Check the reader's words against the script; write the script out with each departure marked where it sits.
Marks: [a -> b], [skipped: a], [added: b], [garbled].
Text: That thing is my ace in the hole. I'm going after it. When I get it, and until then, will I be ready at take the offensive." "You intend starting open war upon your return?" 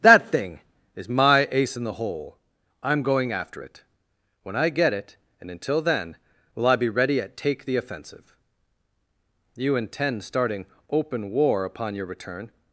That thing is my ace in the hole. I'm going after it. When I get it, and until then, will I be ready at take the offensive." "You intend starting open war upon your return?"